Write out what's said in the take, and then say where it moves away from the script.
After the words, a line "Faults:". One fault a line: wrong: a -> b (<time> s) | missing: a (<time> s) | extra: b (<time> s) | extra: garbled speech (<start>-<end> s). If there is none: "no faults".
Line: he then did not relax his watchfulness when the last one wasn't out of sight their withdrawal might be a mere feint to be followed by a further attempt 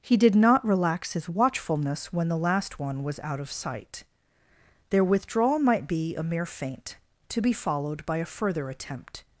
he did not relax his watchfulness when the last one was out of sight their withdrawal might be a mere feint to be followed by a further attempt
Faults:
missing: then (0.2 s)
wrong: wasn't -> was (3.0 s)